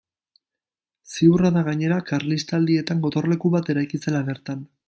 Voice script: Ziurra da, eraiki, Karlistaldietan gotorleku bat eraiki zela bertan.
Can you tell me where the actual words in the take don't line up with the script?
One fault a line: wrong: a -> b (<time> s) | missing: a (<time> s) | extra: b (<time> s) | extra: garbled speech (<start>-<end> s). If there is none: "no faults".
wrong: eraiki -> gainera (1.7 s)